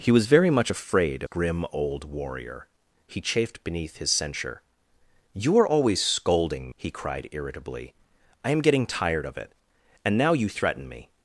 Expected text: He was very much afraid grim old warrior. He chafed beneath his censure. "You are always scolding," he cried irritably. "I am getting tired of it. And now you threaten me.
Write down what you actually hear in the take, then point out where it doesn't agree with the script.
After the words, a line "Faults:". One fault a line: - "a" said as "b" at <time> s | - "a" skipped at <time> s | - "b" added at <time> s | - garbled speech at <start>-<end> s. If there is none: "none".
He was very much afraid grim old warrior. He chafed beneath his censure. "You are always scolding," he cried irritably. "I am getting tired of it. And now you threaten me.
Faults:
none